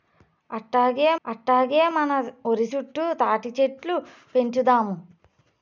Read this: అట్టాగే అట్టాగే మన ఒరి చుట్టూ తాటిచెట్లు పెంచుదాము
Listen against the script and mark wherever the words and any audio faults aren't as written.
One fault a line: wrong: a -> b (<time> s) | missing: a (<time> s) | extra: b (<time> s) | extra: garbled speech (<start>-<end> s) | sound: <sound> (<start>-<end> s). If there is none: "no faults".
no faults